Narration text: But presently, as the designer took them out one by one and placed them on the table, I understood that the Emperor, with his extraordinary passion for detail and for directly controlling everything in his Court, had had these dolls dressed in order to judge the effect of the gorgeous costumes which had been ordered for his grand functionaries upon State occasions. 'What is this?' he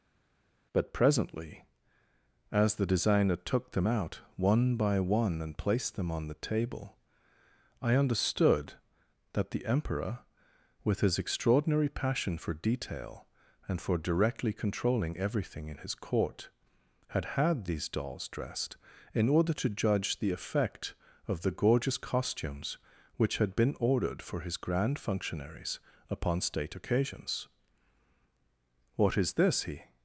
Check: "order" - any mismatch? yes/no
no